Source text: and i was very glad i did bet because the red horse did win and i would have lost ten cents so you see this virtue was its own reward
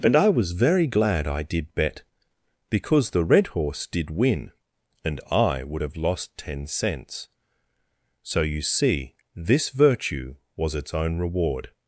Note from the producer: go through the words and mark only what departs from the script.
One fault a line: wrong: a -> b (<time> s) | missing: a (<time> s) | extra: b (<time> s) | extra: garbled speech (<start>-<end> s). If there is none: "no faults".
no faults